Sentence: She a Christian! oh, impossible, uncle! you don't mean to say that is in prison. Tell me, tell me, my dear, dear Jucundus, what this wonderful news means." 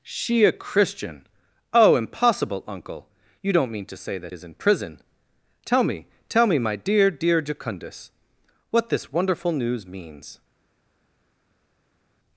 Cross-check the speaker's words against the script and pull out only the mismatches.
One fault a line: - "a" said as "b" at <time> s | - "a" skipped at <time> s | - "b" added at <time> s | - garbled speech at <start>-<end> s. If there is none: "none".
none